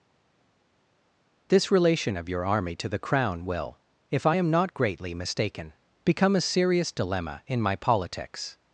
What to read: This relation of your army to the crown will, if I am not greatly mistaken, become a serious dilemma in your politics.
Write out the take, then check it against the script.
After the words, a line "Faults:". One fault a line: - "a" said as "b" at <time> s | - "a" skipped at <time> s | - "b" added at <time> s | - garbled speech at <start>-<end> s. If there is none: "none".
This relation of your army to the crown will, if I am not greatly mistaken, become a serious dilemma in my politics.
Faults:
- "your" said as "my" at 7.6 s